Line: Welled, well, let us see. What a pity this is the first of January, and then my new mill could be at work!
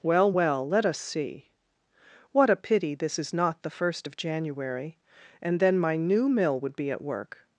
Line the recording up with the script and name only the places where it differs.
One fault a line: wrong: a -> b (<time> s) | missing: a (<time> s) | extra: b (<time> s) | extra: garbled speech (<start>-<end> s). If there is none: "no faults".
wrong: Welled -> Well (0.0 s)
extra: not (3.3 s)
wrong: could -> would (6.6 s)